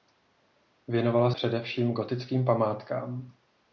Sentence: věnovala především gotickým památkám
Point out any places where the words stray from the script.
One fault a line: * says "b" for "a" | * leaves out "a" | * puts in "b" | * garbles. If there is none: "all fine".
all fine